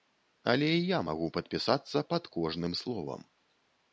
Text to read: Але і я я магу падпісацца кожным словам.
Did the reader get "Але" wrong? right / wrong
right